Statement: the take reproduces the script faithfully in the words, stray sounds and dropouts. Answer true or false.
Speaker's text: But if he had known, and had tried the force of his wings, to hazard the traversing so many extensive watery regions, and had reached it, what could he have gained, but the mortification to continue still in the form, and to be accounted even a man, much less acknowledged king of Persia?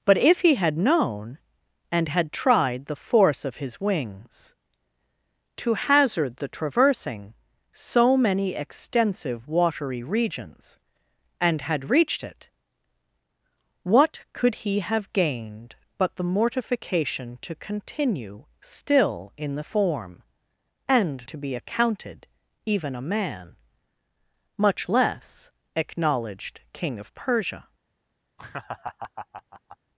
false